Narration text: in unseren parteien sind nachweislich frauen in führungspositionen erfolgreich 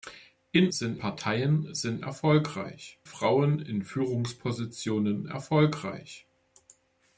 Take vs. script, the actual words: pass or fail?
fail